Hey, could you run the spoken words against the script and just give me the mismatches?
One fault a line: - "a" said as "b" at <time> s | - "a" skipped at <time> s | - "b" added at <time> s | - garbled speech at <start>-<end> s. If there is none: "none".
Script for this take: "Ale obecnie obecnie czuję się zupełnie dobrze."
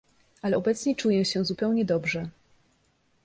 - "obecnie" skipped at 1.0 s